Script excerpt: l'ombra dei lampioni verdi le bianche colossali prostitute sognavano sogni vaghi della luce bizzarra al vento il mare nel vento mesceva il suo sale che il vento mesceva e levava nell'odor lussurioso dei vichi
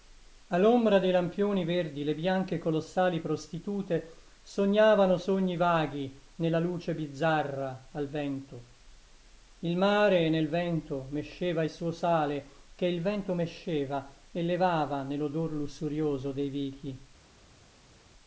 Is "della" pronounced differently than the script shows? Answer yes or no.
yes